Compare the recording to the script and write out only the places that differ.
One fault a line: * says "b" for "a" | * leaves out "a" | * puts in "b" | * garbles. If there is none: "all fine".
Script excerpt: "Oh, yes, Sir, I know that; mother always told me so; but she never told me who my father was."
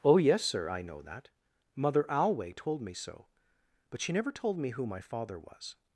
* says "alway" for "always"